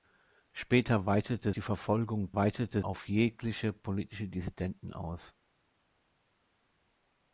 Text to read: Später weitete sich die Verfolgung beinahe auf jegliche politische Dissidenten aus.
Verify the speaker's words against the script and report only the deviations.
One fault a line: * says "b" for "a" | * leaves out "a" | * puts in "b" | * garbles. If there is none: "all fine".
* leaves out "sich"
* says "weitete" for "beinahe"